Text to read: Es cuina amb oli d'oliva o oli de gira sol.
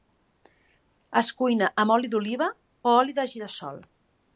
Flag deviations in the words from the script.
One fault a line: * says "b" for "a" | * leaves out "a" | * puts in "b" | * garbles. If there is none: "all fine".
all fine